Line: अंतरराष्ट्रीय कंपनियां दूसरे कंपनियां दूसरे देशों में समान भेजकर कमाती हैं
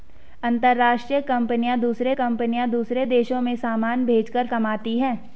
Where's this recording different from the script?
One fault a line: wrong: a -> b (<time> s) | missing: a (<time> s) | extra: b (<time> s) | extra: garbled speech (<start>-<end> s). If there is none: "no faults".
no faults